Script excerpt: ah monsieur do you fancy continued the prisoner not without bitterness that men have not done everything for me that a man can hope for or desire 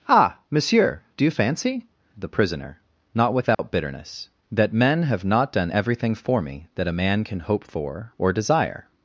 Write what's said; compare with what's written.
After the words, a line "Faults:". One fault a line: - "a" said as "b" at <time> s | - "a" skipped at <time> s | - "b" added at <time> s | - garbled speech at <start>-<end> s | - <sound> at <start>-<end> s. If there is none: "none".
ah monsieur do you fancy the prisoner not without bitterness that men have not done everything for me that a man can hope for or desire
Faults:
- "continued" skipped at 1.9 s
- dropout at 3.5-3.6 s